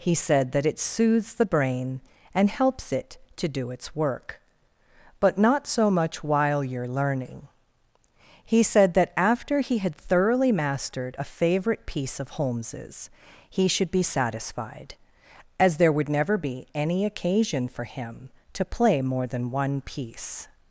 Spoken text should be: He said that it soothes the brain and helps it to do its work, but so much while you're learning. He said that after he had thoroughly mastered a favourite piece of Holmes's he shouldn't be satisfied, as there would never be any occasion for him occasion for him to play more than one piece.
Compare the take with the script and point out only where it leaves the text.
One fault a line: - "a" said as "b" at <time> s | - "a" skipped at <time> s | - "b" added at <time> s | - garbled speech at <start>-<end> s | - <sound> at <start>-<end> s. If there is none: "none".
- "not" added at 5.4 s
- "shouldn't" said as "should" at 13.7 s
- "occasion for him" skipped at 18.3 s